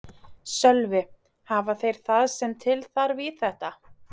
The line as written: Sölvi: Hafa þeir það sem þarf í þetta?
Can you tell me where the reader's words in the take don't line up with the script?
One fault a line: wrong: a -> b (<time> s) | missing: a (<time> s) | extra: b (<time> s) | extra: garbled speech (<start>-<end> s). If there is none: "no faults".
extra: til (2.6 s)